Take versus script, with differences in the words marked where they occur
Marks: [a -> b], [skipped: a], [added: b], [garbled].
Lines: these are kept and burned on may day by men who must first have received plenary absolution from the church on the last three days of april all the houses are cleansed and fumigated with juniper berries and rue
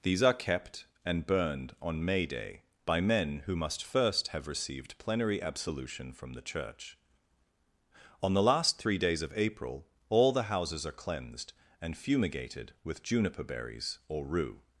these are kept and burned on may day by men who must first have received plenary absolution from the church on the last three days of april all the houses are cleansed and fumigated with juniper berries [and -> or] rue